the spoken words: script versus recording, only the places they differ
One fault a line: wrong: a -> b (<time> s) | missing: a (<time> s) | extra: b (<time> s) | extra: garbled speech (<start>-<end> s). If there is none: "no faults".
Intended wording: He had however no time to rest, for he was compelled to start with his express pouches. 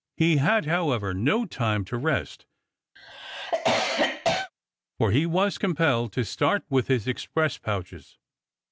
no faults